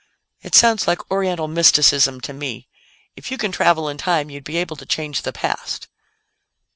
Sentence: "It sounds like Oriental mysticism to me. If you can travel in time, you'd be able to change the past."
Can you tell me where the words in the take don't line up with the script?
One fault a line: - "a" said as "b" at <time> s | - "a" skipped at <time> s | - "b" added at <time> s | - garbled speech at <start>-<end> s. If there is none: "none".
none